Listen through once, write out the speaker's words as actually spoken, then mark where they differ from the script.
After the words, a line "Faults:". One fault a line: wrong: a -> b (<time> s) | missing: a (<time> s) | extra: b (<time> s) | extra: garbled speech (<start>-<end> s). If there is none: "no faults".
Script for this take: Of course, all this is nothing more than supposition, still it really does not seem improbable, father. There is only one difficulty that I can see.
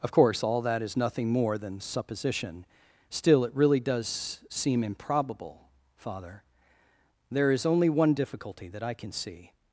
Of course, all that is nothing more than supposition, still it really does seem improbable, father. There is only one difficulty that I can see.
Faults:
wrong: this -> that (0.6 s)
missing: not (4.4 s)